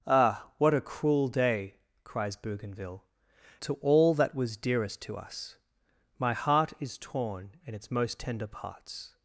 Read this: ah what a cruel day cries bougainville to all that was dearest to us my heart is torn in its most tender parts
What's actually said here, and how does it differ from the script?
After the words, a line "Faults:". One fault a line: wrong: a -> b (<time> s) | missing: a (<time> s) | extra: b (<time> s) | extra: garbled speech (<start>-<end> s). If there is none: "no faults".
ah what a cruel day cries bougainville to all that was dearest to us my heart is torn in its most tender parts
Faults:
no faults